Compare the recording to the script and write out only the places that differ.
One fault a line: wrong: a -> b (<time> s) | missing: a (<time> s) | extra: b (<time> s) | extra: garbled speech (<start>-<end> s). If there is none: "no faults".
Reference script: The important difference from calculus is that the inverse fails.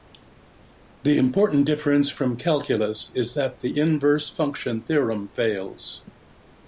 extra: function theorem (4.3 s)